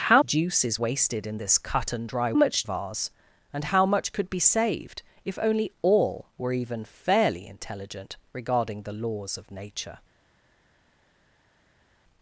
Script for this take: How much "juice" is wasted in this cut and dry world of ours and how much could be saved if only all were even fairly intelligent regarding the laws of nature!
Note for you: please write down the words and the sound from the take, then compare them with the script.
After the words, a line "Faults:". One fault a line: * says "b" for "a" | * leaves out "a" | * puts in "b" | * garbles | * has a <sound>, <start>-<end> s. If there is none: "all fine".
How "juice" is wasted in this cut and dry much of ours and how much could be saved if only all were even fairly intelligent regarding the laws of nature!
Faults:
* leaves out "much"
* says "much" for "world"